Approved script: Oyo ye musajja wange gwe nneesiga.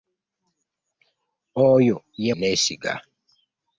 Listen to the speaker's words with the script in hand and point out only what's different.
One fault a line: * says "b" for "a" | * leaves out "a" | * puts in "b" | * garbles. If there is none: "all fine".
* leaves out "musajja wange gwe"